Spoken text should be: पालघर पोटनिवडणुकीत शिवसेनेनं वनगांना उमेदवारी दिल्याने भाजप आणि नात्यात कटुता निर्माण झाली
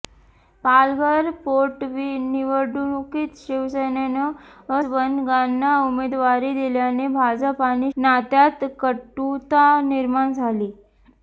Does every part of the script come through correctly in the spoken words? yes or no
yes